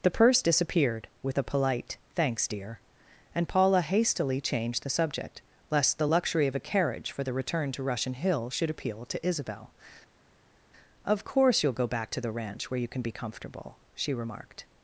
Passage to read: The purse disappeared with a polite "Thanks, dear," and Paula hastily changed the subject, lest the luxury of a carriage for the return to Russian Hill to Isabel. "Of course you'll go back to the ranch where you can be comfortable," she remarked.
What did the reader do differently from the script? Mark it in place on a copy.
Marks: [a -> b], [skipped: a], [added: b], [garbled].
The purse disappeared with a polite "Thanks, dear," and Paula hastily changed the subject, lest the luxury of a carriage for the return to Russian Hill [added: should appeal] to Isabel. "Of course you'll go back to the ranch where you can be comfortable," she remarked.